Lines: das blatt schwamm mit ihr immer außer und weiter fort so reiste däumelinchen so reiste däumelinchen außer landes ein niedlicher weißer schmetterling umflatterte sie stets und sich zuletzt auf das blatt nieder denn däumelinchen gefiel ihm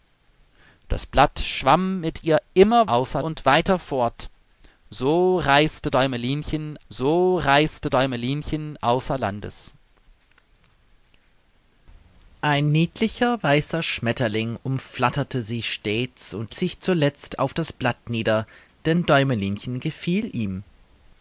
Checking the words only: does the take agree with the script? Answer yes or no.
yes